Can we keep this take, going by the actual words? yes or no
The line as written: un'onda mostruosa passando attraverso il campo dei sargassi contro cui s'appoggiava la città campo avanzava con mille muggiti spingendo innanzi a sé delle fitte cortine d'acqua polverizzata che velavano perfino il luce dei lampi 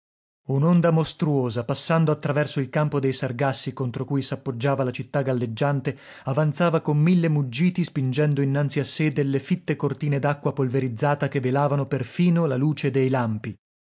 no